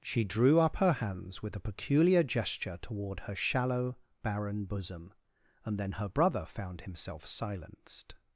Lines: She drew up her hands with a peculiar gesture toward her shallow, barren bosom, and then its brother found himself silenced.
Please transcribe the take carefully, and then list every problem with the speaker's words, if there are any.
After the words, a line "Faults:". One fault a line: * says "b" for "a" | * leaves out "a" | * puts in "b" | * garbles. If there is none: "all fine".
She drew up her hands with a peculiar gesture toward her shallow, barren bosom, and then her brother found himself silenced.
Faults:
* says "her" for "its"